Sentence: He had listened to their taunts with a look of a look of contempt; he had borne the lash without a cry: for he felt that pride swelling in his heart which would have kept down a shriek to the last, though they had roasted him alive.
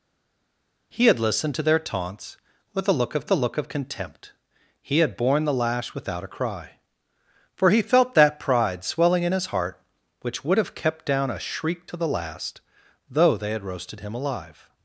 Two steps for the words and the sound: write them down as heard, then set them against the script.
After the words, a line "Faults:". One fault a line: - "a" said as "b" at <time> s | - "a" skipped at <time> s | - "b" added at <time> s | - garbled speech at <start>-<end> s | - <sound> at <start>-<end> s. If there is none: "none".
He had listened to their taunts with a look of a look of contempt; he had borne the lash without a cry: for he felt that pride swelling in his heart which would have kept down a shriek to the last, though they had roasted him alive.
Faults:
none